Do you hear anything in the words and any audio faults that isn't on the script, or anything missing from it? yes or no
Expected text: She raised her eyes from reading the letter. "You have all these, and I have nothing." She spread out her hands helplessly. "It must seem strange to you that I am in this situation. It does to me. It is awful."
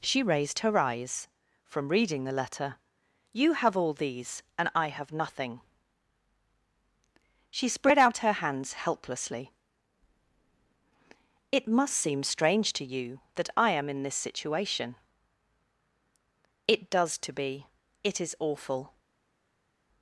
yes